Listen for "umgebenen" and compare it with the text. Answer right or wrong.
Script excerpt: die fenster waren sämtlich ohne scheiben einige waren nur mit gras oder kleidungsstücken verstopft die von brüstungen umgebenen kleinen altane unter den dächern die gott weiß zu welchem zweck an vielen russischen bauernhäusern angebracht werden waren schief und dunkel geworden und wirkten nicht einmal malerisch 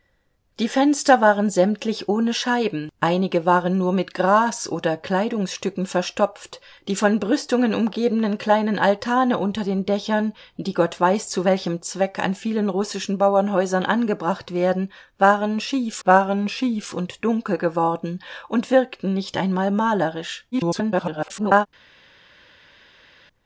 right